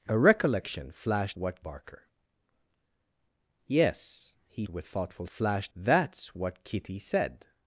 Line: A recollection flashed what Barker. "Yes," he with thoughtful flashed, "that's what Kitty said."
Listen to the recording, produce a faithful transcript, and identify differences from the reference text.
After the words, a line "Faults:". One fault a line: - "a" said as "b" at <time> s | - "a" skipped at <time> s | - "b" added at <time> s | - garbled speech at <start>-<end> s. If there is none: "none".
A recollection flashed what Barker. "Yes," he with thoughtful flashed, "that's what Kitty said."
Faults:
none